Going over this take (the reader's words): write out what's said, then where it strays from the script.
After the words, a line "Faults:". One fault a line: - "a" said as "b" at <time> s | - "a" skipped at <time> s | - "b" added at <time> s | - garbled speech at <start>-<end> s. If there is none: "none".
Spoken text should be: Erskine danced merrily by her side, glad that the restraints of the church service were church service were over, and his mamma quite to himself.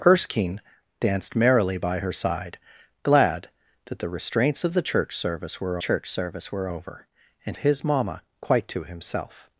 Erskine danced merrily by her side, glad that the restraints of the church service were church service were over, and his mamma quite to himself.
Faults:
none